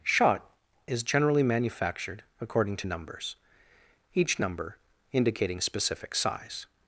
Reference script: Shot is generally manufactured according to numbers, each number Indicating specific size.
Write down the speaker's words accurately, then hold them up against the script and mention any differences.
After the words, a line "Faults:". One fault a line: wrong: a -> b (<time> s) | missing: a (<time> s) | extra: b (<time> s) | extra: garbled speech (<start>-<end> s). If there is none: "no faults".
Shot is generally manufactured according to numbers, each number Indicating specific size.
Faults:
no faults